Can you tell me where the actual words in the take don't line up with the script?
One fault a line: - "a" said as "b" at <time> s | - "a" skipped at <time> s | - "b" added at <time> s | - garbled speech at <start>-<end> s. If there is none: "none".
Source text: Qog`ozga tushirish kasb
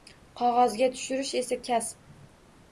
- "esa" added at 1.4 s